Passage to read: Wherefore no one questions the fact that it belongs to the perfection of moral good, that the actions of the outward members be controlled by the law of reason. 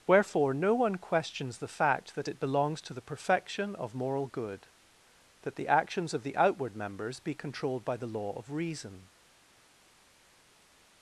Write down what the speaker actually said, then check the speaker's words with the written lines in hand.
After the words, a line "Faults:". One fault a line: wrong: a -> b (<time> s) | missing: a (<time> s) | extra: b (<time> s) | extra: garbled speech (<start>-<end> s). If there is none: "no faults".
Wherefore no one questions the fact that it belongs to the perfection of moral good, that the actions of the outward members be controlled by the law of reason.
Faults:
no faults